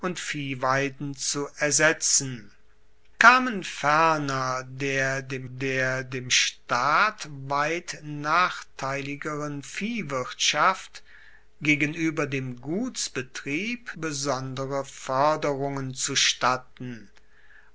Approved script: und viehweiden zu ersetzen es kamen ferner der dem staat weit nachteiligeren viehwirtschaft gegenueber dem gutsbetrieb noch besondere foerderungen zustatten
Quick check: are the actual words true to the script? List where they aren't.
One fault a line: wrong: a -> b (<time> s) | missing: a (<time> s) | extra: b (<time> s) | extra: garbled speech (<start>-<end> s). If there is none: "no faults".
missing: es (2.5 s)
extra: der dem (5.5 s)
missing: noch (13.9 s)